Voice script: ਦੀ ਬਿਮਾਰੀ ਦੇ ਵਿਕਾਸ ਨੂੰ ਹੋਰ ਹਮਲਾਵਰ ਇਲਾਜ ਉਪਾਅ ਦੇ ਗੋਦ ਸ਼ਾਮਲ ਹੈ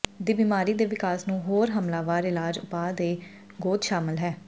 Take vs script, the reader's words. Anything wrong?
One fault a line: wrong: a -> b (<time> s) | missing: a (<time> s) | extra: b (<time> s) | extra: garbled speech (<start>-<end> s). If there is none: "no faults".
no faults